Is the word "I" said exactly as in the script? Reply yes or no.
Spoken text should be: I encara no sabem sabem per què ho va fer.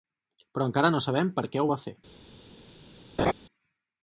no